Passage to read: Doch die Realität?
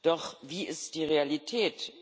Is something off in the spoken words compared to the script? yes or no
yes